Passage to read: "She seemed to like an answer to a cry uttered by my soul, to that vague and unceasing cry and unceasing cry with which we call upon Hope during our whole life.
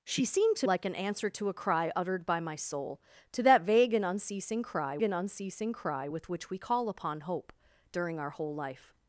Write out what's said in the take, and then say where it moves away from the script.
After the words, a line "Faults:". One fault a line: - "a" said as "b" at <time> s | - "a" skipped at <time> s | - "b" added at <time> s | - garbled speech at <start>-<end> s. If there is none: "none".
"She seemed to like an answer to a cry uttered by my soul, to that vague and unceasing cry and unceasing cry with which we call upon Hope during our whole life.
Faults:
none